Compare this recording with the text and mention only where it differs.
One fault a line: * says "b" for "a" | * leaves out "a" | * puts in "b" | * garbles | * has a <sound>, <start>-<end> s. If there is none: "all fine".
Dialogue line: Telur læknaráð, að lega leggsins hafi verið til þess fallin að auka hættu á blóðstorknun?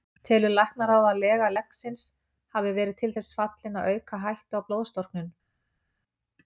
all fine